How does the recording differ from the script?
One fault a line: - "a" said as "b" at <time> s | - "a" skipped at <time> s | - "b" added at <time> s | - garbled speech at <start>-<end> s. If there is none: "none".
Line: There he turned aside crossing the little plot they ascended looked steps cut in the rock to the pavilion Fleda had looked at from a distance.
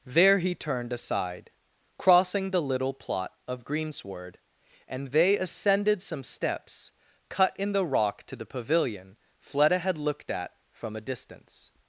- "of greensward and" added at 3.5 s
- "looked" said as "some" at 6.0 s